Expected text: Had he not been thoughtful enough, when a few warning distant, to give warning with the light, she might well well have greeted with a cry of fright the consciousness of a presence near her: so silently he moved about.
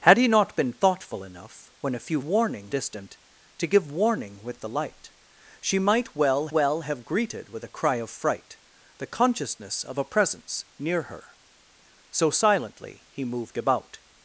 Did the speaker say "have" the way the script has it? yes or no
yes